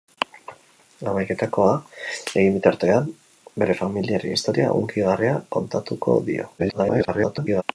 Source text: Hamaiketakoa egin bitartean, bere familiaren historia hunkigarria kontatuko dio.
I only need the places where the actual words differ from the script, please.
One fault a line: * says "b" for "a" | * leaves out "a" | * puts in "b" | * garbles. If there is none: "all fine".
* garbles